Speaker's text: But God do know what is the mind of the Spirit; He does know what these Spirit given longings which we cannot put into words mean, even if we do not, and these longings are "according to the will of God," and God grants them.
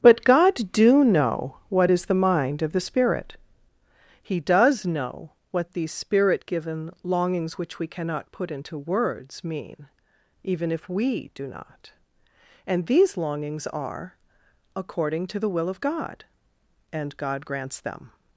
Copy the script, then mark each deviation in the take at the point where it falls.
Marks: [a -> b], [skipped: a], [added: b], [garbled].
But God do know what is the mind of the Spirit; He does know what these Spirit given longings which we cannot put into words mean, even if we do not, and these longings are "according to the will of God," and God grants them.